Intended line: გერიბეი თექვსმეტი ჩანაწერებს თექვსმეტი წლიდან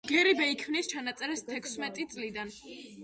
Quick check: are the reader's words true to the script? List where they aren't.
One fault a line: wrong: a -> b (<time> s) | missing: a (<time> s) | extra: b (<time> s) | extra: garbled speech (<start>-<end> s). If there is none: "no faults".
wrong: თექვსმეტი -> ქმნის (0.6 s)